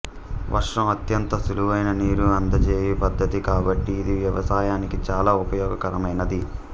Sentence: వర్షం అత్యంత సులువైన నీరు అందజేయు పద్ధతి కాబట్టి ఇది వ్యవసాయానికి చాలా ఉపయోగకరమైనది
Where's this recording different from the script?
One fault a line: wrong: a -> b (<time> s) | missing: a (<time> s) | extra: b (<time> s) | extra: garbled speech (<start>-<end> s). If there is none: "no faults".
no faults